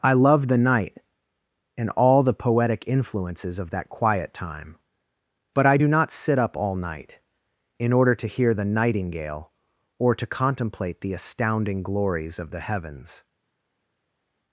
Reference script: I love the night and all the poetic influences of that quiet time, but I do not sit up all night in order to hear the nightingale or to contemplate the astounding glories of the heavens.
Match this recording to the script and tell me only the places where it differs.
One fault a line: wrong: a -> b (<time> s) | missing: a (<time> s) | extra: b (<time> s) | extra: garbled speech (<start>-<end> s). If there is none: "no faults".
no faults